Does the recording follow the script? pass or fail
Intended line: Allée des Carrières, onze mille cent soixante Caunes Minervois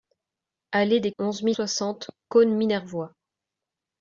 fail